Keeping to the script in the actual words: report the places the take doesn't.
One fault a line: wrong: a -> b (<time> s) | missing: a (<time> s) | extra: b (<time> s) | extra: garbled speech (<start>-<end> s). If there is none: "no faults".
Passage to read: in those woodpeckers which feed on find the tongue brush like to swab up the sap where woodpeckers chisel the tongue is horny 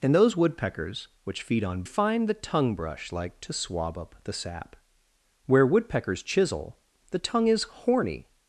no faults